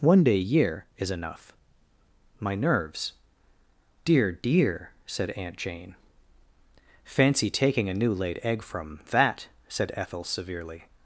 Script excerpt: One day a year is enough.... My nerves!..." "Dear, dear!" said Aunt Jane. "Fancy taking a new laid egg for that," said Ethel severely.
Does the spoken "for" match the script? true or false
false